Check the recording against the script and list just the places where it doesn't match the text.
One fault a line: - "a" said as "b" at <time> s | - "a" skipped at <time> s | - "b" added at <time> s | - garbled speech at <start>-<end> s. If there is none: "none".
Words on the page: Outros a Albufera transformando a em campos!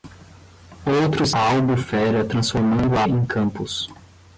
none